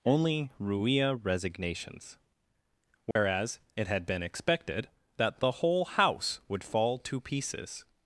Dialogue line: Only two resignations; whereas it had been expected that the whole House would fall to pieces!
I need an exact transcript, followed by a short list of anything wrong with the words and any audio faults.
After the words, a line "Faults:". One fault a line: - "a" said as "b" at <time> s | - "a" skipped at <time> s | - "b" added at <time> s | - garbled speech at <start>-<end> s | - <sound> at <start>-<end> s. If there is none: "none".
Only ruia resignations; whereas it had been expected that the whole House would fall to pieces!
Faults:
- "two" said as "ruia" at 0.6 s
- dropout at 3.1-3.2 s